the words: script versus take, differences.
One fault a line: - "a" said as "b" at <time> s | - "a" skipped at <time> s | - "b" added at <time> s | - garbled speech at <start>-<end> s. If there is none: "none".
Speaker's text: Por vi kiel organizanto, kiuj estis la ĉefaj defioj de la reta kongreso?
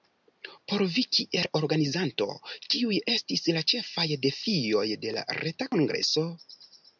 none